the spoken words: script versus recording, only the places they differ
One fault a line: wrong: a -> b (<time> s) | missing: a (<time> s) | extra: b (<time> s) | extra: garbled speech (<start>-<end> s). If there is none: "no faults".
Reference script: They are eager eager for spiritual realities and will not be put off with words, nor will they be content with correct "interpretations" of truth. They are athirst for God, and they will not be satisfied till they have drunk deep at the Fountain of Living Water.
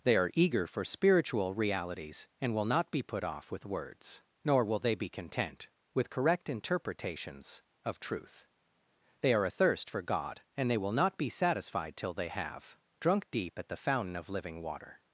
missing: eager (0.7 s)